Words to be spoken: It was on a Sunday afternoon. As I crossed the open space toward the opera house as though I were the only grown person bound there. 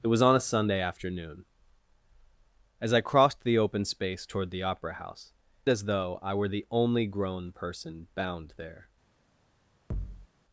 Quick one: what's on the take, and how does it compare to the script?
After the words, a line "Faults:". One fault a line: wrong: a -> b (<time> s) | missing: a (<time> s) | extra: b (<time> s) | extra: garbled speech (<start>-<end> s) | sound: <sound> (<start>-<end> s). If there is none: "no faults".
It was on a Sunday afternoon. As I crossed the open space toward the opera house as though I were the only grown person bound there.
Faults:
sound: thud (9.9-10.3 s)